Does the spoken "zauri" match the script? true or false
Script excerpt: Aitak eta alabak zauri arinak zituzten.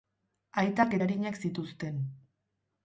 false